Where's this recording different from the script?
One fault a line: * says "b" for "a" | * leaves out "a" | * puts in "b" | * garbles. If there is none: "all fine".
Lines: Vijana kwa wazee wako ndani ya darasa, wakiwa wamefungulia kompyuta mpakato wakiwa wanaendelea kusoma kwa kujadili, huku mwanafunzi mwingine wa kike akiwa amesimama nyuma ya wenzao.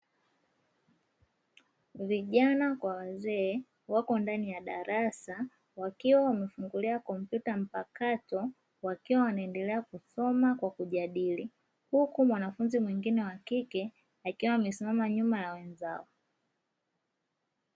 all fine